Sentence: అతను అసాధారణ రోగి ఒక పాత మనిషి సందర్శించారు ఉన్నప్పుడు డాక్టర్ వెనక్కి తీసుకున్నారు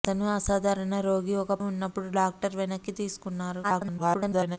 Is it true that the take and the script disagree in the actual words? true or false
true